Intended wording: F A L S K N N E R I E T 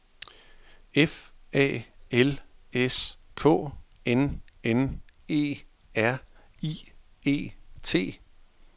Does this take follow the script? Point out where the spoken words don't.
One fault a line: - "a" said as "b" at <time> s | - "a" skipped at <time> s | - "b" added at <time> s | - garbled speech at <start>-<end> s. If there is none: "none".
none